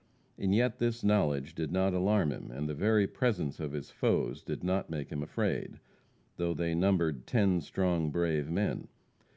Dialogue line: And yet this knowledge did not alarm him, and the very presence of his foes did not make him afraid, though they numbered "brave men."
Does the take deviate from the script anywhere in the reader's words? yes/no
yes